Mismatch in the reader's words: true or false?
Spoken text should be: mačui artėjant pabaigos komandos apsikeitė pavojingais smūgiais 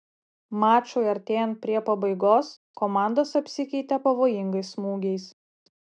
true